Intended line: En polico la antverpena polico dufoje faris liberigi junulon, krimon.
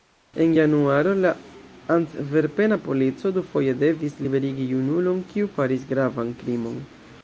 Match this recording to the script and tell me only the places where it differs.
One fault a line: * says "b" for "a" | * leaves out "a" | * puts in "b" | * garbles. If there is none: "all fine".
* says "januaro" for "polico"
* says "devis" for "faris"
* puts in "kiu faris gravan"